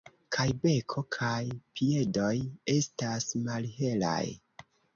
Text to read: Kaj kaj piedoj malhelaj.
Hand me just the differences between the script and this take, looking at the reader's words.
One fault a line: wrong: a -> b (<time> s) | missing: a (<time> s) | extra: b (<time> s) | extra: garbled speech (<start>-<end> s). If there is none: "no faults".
extra: beko (0.6 s)
extra: estas (2.8 s)